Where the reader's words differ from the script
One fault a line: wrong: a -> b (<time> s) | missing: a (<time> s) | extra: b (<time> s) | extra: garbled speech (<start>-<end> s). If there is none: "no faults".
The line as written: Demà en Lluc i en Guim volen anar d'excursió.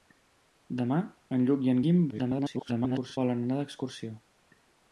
extra: garbled speech (2.1-3.2 s)